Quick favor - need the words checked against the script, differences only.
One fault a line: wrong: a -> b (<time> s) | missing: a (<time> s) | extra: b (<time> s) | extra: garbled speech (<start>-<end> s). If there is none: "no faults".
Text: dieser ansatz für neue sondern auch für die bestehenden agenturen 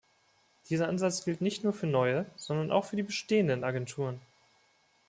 extra: gilt nicht nur (1.2 s)